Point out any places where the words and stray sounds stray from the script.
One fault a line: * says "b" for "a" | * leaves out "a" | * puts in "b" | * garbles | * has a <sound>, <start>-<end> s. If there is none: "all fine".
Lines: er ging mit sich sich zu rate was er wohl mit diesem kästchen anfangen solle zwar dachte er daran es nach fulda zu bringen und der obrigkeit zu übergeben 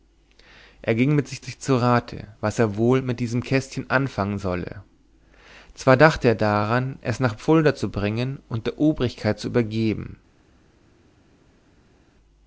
all fine